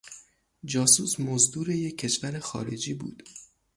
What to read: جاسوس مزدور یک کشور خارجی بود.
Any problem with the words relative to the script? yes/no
no